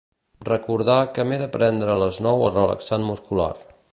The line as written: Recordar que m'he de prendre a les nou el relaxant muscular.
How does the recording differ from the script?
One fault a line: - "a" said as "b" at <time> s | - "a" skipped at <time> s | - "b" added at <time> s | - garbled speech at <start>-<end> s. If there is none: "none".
none